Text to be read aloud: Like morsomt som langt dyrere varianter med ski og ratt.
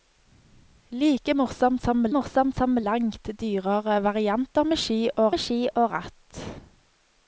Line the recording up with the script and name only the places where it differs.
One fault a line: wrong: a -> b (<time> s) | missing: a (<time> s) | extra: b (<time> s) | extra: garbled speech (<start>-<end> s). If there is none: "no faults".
extra: morsomt som (2.2 s)
extra: med ski og (5.3 s)